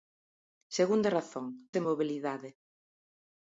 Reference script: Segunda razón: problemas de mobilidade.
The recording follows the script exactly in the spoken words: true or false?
false